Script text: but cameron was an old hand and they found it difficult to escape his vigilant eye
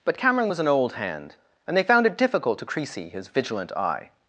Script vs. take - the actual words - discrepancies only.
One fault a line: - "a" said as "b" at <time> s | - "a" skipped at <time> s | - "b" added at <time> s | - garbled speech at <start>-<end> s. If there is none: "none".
- "escape" said as "creasy" at 2.6 s